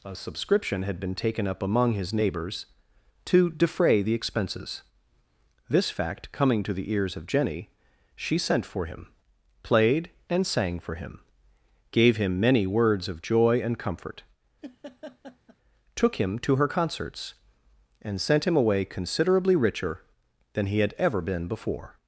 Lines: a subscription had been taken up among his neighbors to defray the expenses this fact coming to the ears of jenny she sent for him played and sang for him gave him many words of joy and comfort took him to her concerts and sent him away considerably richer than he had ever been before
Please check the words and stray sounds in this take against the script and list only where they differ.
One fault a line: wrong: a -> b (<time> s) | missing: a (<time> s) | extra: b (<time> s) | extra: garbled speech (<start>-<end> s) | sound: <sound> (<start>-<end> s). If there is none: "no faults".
sound: laugh (14.6-15.6 s)